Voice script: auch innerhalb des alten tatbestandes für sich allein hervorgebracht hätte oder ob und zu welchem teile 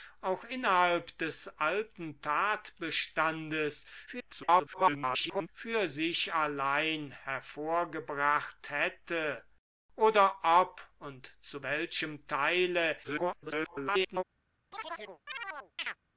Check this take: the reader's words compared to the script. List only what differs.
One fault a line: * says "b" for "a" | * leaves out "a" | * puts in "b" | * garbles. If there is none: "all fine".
* garbles
* garbles